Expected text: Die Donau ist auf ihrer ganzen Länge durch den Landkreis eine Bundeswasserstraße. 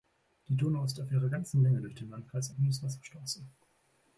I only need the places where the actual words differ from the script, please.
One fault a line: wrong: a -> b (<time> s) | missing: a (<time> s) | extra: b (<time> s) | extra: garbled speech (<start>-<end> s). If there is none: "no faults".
missing: eine (2.5 s)